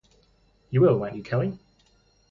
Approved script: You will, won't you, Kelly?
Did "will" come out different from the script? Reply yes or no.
no